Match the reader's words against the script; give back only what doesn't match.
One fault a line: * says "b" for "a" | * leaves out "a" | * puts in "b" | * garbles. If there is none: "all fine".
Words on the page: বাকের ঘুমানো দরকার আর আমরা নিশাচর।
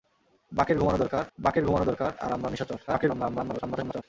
* puts in "বাকের ঘুমানো দরকার"
* garbles